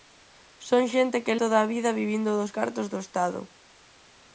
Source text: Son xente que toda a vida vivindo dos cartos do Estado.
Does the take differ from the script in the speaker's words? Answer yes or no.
no